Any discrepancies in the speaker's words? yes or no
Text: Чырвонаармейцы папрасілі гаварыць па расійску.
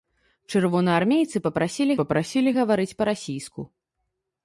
yes